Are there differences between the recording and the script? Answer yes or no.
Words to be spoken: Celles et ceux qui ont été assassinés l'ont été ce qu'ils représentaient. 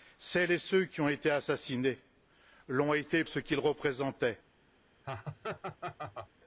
no